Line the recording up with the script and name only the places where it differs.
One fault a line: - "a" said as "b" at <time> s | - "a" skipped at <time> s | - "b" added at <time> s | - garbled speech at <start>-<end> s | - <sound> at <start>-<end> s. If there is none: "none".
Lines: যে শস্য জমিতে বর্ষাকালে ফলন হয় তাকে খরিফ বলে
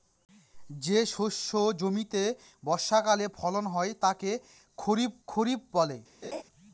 - "খরিফ" added at 5.3 s
- laugh at 6.2-6.4 s